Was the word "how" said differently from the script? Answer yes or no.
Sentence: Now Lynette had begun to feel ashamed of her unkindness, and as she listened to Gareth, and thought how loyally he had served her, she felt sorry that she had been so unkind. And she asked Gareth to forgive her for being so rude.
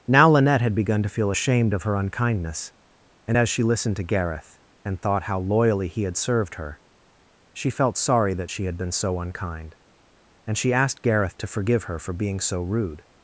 no